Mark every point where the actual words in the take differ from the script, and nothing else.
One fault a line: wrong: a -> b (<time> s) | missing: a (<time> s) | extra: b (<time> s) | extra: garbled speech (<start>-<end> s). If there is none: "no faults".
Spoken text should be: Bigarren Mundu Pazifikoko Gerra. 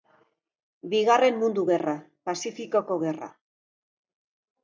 extra: Gerra (1.7 s)